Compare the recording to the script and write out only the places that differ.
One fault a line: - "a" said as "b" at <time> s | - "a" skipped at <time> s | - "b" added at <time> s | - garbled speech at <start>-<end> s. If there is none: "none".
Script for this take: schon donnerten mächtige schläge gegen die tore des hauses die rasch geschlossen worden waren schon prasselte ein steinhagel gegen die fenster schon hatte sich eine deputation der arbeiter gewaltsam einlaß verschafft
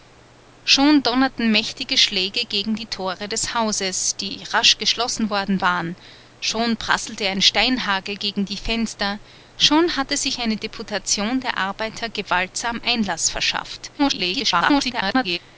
- garbled speech at 14.0-15.4 s